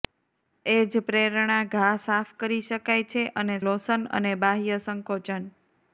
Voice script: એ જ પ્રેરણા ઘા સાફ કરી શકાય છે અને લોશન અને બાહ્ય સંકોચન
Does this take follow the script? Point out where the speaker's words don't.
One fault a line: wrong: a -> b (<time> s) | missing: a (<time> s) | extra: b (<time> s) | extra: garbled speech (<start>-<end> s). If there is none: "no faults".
no faults